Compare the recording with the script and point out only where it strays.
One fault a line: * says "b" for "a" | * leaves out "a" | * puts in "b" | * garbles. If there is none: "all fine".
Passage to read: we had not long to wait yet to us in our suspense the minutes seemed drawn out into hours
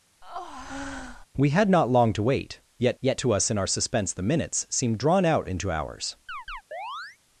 * puts in "yet"